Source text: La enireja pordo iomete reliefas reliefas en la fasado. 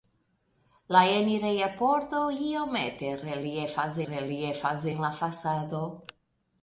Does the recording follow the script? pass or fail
pass